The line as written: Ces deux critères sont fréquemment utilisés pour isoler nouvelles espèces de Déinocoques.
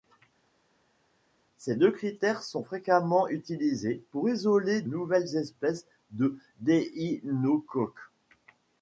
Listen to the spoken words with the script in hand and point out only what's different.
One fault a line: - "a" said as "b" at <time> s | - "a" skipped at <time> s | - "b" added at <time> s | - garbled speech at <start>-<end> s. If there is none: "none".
none